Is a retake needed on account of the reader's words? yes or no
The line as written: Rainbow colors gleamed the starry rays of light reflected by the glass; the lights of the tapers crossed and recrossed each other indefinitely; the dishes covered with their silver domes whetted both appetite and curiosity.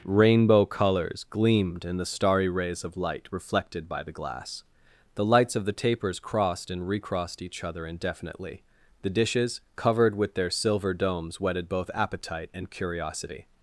yes